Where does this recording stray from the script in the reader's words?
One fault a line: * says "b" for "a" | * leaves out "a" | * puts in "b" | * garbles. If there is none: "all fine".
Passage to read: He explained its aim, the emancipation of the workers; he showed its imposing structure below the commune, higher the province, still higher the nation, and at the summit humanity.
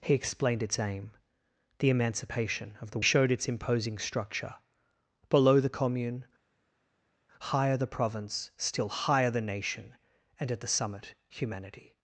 * leaves out "workers he"